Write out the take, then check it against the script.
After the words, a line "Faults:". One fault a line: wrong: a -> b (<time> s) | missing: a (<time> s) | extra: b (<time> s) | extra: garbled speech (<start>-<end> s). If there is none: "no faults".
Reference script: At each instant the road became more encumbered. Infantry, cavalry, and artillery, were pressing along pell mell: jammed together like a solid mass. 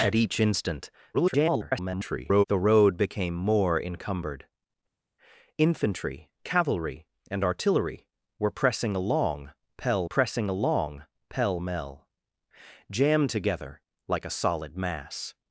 At each instant [garbled] the road became more encumbered. Infantry, cavalry, and artillery, were pressing along pell pressing along pell mell: jammed together like a solid mass.
Faults:
extra: garbled speech (1.1-2.4 s)
extra: pressing along pell (10.0 s)